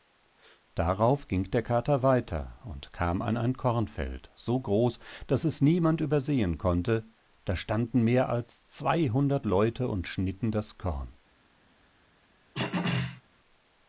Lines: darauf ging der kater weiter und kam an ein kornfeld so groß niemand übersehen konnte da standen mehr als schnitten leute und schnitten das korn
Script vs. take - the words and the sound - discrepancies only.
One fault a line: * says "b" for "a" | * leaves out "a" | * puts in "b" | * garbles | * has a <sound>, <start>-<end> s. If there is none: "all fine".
* puts in "daß es"
* says "zweihundert" for "schnitten"
* has a throat clearing, 12.5-13.2 s